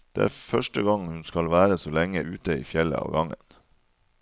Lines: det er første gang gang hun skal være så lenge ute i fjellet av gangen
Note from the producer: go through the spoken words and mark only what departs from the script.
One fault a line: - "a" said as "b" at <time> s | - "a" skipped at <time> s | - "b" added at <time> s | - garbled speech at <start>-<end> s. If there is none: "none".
- "gang" skipped at 1.1 s